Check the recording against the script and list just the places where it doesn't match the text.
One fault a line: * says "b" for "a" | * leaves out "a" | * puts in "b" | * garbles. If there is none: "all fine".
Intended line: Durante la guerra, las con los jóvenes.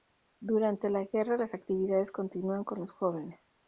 * puts in "actividades continúan"